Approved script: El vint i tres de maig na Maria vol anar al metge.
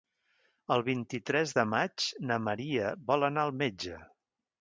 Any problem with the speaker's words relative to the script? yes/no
no